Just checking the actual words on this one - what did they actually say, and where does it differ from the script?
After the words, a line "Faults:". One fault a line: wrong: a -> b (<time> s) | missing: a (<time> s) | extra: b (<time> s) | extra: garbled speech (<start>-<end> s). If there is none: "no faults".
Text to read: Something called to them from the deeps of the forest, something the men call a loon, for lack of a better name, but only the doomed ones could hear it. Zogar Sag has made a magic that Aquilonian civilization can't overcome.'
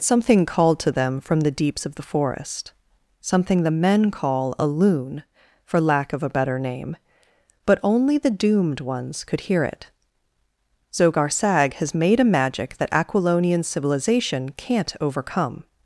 Something called to them from the deeps of the forest, something the men call a loon, for lack of a better name, but only the doomed ones could hear it. Zogar Sag has made a magic that Aquilonian civilization can't overcome.'
Faults:
no faults